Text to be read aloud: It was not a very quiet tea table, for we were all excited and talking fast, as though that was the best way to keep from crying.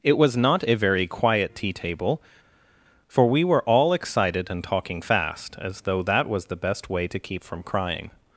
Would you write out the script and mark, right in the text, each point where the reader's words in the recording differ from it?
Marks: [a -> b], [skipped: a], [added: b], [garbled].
It was not a very quiet tea table, for we were all excited and talking fast, as though that was the best way to keep from crying.